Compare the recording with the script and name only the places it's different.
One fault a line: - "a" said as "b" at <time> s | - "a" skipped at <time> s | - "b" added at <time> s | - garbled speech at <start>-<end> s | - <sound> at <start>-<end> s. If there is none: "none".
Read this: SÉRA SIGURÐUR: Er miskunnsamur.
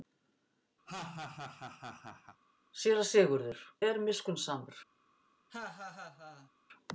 - laugh at 0.8-2.4 s
- laugh at 5.5-6.5 s